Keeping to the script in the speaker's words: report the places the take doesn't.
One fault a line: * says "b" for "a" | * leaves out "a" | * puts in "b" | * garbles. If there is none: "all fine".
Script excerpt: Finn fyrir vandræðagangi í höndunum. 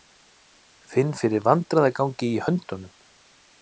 all fine